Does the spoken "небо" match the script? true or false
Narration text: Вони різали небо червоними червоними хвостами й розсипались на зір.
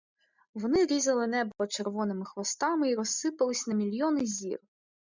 true